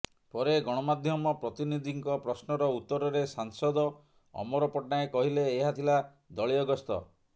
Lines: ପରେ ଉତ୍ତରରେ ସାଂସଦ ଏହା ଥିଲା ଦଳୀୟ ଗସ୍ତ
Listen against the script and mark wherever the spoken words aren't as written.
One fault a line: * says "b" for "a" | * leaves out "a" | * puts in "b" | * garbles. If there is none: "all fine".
* puts in "ଗଣମାଧ୍ୟମ ପ୍ରତିନିଧିଙ୍କ ପ୍ରଶ୍ନର"
* puts in "ଅମର ପଟ୍ଟନାୟକ କହିଲେ"